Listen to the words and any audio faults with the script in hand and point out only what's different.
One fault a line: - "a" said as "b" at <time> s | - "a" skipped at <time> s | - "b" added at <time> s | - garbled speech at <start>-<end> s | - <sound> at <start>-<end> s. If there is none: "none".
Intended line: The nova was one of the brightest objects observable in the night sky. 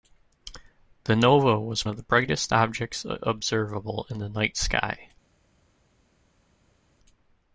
- "one" skipped at 1.9 s